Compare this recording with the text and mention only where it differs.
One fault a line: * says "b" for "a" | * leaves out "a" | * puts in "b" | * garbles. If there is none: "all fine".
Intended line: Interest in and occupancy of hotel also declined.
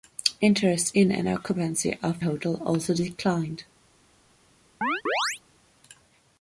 all fine